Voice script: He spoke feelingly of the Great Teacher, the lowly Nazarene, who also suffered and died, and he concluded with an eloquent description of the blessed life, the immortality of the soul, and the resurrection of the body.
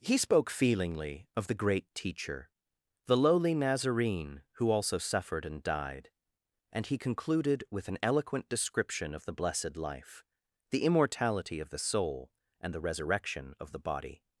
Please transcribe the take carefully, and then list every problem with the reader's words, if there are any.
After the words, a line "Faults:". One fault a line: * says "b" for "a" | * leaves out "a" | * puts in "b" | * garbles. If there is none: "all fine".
He spoke feelingly of the Great Teacher, the lowly Nazarene, who also suffered and died, and he concluded with an eloquent description of the blessed life, the immortality of the soul, and the resurrection of the body.
Faults:
all fine